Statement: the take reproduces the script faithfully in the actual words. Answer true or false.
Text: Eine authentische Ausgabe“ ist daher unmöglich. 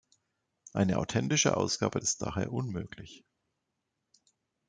true